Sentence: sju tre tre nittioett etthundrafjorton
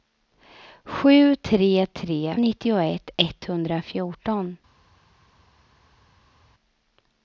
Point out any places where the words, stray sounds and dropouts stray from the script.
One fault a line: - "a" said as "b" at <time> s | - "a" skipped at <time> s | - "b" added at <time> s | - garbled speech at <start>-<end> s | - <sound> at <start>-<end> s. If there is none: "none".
none